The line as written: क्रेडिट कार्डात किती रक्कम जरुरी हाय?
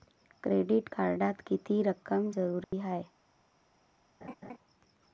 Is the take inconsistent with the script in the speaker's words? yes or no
no